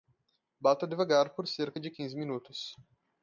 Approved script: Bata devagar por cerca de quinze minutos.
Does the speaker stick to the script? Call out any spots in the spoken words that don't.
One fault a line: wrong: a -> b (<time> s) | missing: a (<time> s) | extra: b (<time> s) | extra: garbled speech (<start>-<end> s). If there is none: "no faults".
no faults